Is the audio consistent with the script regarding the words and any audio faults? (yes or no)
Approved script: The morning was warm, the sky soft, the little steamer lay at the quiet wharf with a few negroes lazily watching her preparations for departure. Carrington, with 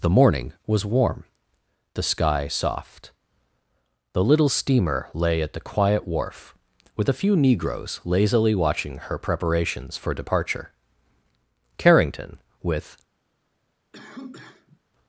no